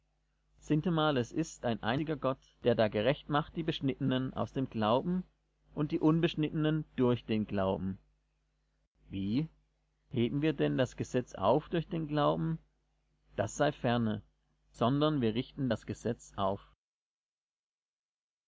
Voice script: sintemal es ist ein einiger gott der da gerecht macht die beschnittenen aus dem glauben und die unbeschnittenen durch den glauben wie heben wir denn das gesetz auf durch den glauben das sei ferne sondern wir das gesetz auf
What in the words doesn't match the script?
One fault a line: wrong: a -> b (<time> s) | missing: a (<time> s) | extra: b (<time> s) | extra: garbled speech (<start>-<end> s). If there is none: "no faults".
extra: richten (15.3 s)